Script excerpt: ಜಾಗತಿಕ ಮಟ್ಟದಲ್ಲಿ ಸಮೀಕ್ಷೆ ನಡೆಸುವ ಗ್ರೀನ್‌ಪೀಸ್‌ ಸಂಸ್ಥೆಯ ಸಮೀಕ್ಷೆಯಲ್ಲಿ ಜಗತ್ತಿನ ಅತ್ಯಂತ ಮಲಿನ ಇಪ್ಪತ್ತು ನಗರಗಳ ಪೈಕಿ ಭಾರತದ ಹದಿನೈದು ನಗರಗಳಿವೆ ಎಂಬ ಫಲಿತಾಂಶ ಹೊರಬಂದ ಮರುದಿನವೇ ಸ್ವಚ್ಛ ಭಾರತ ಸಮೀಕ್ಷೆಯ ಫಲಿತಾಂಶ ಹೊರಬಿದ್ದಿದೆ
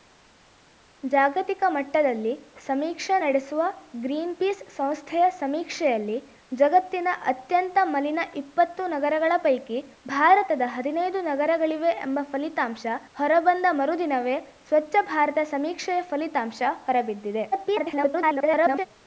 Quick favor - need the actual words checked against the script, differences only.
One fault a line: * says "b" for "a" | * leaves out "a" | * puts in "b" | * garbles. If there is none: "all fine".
* garbles